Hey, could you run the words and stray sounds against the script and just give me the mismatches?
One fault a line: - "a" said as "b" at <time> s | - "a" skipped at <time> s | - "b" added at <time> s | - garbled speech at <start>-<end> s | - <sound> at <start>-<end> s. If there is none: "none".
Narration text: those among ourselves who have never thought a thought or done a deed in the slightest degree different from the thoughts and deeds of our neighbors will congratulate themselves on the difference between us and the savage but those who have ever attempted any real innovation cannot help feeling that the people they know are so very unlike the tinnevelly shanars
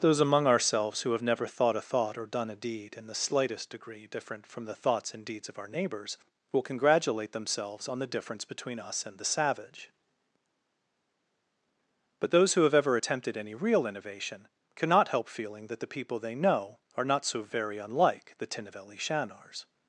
- "not" added at 17.0 s